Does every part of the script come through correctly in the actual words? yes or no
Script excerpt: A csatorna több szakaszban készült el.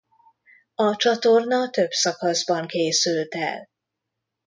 yes